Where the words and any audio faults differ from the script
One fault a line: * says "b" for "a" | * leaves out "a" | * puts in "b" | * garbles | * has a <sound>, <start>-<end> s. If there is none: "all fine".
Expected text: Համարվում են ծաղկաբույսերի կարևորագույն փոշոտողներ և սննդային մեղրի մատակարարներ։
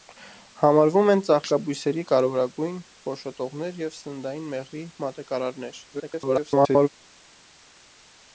* garbles